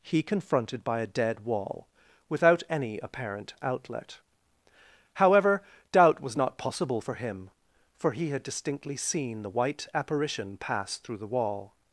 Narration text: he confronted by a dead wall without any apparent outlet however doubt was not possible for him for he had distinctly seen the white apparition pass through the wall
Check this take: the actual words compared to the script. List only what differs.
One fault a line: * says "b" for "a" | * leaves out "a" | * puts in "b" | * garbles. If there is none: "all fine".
all fine